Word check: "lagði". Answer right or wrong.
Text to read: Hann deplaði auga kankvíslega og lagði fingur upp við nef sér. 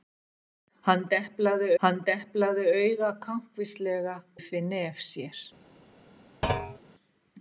wrong